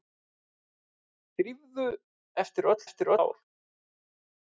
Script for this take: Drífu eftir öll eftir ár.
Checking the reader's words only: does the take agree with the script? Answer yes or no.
yes